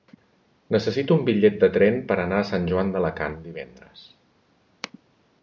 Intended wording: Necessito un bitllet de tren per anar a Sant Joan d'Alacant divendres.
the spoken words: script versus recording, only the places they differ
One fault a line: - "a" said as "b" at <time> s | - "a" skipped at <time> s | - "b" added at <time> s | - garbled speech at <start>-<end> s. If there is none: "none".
none